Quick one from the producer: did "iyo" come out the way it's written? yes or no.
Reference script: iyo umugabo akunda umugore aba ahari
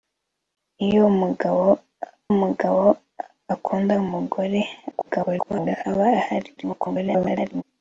yes